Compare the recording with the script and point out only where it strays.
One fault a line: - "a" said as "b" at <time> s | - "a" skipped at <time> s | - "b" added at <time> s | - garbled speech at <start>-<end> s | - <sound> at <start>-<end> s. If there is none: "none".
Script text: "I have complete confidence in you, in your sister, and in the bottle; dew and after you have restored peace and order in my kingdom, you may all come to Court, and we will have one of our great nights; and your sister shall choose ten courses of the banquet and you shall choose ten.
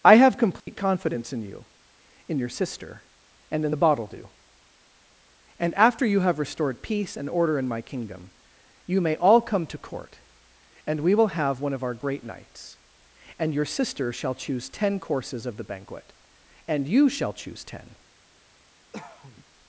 - dropout at 0.6-0.7 s
- cough at 18.9-19.5 s